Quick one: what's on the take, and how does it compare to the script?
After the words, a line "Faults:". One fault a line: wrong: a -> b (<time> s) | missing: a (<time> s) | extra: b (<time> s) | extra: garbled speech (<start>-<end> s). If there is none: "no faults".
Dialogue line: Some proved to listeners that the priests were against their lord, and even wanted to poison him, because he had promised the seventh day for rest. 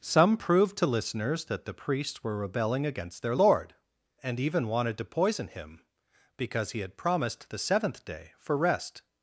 Some proved to listeners that the priests were rebelling against their lord, and even wanted to poison him, because he had promised the seventh day for rest.
Faults:
extra: rebelling (2.4 s)